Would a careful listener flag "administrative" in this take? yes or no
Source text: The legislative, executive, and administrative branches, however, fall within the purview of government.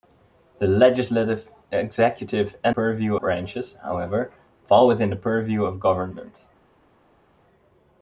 yes